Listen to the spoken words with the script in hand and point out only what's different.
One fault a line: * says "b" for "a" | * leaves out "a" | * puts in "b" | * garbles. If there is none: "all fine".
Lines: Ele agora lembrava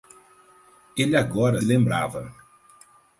all fine